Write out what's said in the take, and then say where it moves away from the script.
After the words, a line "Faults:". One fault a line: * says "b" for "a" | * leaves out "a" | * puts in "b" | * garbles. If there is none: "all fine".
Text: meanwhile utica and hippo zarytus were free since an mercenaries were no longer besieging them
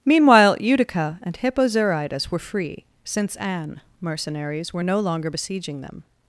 meanwhile utica and hippo zarytus were free since an mercenaries were no longer besieging them
Faults:
all fine